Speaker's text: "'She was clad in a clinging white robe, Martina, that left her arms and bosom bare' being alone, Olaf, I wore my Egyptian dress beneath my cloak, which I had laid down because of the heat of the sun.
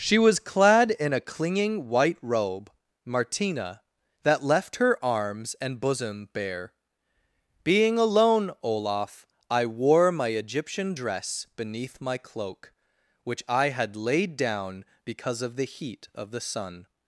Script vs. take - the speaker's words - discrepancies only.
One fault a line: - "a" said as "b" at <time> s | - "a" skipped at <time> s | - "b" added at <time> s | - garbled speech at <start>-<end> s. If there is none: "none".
none